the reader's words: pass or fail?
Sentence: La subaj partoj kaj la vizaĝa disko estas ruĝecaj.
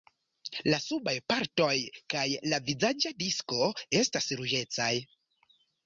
pass